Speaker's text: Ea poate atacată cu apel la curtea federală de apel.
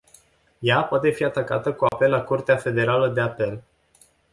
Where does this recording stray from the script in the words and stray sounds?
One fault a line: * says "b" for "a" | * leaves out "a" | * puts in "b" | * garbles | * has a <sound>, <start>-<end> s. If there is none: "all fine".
* puts in "fi"
* has a dropout, 1.9-1.9 s